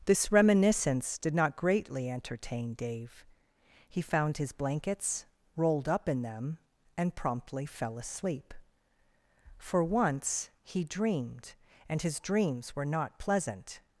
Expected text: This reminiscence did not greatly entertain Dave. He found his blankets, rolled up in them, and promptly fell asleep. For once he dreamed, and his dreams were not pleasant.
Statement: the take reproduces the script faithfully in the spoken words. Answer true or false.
true